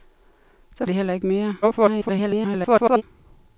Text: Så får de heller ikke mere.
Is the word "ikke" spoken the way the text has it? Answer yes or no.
yes